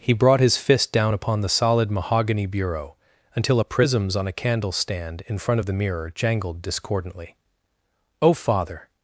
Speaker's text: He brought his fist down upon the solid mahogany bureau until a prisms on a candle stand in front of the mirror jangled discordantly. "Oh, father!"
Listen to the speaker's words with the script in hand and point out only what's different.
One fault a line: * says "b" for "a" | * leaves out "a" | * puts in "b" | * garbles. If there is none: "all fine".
all fine